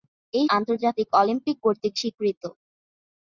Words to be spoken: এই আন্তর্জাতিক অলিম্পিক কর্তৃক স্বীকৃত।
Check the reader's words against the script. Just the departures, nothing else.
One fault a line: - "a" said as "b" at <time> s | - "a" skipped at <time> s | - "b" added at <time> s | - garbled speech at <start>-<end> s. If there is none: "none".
none